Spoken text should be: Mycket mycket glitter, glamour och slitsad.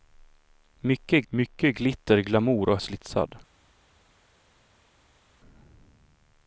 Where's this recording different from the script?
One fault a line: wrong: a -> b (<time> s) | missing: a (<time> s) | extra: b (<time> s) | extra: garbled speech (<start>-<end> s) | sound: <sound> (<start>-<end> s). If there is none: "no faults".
no faults